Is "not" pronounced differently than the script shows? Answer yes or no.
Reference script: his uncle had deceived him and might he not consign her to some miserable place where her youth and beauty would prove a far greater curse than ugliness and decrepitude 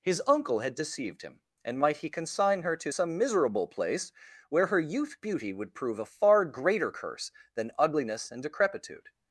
yes